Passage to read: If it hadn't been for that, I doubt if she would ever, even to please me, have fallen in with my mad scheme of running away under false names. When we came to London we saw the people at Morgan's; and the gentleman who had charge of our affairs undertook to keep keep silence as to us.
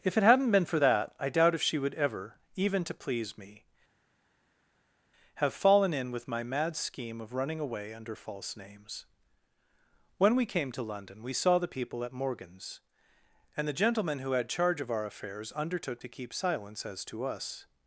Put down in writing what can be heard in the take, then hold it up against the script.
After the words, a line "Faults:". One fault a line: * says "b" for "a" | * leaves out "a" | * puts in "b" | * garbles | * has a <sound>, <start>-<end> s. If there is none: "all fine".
If it hadn't been for that, I doubt if she would ever, even to please me, have fallen in with my mad scheme of running away under false names. When we came to London we saw the people at Morgan's; and the gentleman who had charge of our affairs undertook to keep silence as to us.
Faults:
* leaves out "keep"